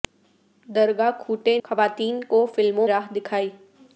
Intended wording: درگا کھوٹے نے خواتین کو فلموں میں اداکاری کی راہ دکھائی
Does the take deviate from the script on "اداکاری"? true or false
true